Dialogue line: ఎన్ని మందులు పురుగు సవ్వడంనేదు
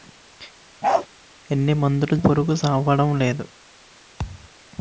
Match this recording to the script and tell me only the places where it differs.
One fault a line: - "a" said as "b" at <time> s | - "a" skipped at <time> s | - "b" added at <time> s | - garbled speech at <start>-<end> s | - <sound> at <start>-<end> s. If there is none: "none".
- bark at 0.8-1.1 s
- thud at 4.2-4.5 s